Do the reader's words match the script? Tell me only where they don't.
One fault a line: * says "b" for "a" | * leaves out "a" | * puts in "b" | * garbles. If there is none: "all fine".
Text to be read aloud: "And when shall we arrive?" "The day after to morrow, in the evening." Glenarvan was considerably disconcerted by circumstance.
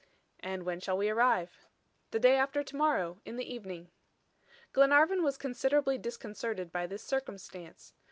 * puts in "this"